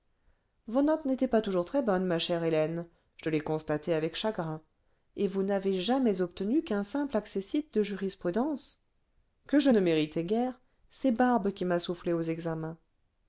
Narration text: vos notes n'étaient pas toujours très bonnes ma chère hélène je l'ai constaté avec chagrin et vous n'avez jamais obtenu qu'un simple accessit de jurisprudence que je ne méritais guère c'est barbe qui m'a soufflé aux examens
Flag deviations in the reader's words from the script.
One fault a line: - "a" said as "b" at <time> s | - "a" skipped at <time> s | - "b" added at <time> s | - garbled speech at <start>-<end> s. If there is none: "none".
none